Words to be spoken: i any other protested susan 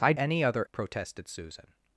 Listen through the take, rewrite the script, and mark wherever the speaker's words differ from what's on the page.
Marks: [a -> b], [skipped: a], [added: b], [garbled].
i any other protested susan